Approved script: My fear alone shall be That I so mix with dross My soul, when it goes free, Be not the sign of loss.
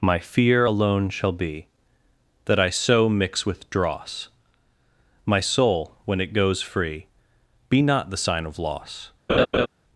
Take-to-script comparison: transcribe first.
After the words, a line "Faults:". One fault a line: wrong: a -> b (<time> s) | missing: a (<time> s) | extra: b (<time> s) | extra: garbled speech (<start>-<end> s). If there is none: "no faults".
My fear alone shall be That I so mix with dross My soul, when it goes free, Be not the sign of loss.
Faults:
no faults